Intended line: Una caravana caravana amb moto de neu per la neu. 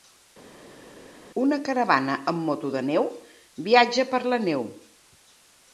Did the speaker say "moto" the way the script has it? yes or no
yes